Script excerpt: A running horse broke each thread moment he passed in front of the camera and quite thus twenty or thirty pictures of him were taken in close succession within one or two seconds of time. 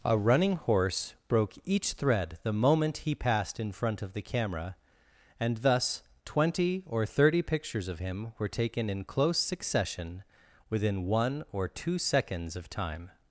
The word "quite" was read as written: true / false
false